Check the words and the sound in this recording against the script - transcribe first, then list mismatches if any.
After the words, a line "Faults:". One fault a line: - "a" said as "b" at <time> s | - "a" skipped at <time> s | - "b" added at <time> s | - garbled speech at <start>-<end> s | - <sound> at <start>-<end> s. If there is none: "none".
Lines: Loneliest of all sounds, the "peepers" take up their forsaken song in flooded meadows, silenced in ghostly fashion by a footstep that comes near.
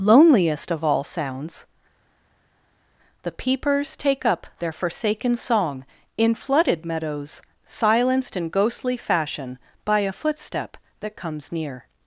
Loneliest of all sounds, the "peepers" take up their forsaken song in flooded meadows, silenced in ghostly fashion by a footstep that comes near.
Faults:
none